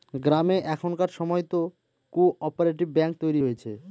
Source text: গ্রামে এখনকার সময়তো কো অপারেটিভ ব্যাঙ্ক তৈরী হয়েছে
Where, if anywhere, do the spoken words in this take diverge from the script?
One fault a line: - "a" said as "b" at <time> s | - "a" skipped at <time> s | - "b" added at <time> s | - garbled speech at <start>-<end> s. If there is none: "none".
none